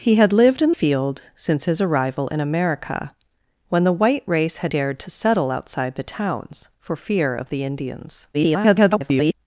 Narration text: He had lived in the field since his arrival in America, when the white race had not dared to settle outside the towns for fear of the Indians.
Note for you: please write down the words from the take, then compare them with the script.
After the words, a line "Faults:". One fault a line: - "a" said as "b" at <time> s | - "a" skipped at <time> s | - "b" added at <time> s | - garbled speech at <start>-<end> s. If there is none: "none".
He had lived in field since his arrival in America, when the white race had dared to settle outside the towns for fear of the Indians. [garbled]
Faults:
- "the" skipped at 0.7 s
- "not" skipped at 4.7 s
- garbled speech at 8.3-9.3 s